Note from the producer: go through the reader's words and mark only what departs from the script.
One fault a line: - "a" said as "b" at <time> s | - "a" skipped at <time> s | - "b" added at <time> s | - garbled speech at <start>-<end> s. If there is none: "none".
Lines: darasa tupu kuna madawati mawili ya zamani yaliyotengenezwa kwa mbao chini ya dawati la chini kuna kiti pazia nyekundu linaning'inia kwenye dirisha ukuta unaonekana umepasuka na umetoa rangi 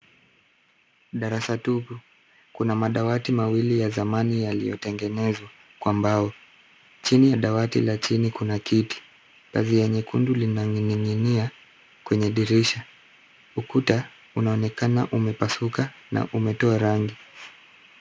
none